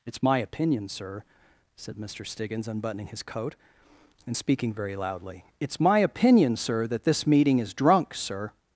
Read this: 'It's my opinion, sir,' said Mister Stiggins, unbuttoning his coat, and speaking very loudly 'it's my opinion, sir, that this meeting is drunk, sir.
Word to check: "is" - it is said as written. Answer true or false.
true